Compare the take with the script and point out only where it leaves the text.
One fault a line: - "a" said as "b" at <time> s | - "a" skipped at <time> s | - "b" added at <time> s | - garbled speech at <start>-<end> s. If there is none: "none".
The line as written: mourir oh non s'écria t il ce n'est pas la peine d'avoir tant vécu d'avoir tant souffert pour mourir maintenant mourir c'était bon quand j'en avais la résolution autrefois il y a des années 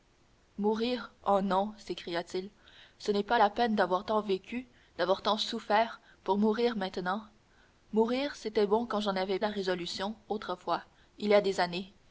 none